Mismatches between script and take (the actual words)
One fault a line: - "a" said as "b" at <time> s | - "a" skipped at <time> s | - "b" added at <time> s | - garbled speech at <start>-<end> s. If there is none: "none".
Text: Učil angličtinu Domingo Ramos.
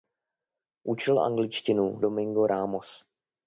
none